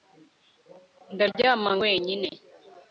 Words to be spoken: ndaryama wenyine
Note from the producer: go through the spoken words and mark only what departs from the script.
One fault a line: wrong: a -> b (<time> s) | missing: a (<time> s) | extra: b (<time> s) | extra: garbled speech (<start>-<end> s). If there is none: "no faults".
no faults